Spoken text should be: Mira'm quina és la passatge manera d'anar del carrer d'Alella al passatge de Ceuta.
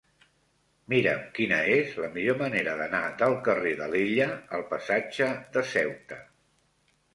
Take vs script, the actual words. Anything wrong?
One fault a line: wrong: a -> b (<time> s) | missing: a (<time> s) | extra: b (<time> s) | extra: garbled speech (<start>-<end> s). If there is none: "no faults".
wrong: passatge -> millor (2.1 s)